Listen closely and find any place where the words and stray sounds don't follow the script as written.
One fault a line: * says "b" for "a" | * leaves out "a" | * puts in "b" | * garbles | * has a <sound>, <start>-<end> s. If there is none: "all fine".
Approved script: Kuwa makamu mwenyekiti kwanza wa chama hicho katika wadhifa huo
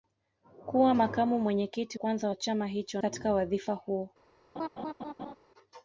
* has a laugh, 4.6-5.4 s